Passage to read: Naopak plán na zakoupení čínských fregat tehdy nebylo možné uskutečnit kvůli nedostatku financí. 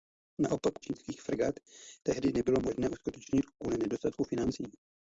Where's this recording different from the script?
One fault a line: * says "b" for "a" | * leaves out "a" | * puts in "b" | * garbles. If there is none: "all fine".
* leaves out "plán na zakoupení"